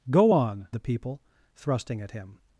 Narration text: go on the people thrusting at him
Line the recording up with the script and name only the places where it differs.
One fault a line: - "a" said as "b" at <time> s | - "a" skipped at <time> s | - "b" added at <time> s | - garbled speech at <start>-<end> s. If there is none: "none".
none